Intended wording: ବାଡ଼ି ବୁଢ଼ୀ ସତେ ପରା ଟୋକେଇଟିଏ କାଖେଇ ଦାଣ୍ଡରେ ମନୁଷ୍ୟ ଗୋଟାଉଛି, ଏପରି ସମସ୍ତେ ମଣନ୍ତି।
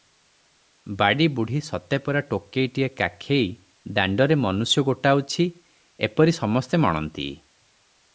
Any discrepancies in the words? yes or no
no